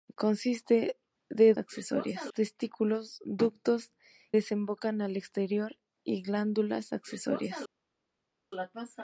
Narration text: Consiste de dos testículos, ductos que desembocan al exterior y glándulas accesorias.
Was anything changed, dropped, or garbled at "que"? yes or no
yes